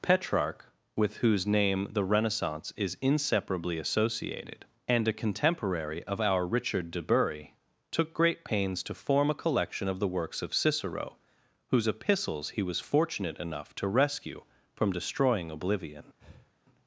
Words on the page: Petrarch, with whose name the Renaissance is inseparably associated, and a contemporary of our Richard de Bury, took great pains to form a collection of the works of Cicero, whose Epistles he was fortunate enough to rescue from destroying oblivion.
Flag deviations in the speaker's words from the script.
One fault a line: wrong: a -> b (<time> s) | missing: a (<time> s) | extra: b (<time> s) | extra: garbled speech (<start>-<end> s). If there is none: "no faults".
no faults